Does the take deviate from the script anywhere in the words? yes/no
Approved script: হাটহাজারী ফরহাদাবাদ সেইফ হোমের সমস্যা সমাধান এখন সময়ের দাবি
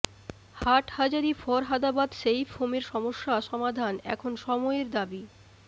no